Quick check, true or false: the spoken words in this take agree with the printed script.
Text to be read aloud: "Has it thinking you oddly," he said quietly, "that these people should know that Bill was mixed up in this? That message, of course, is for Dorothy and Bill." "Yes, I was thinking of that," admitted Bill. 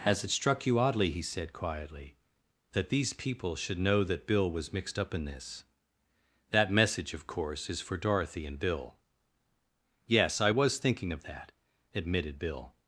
false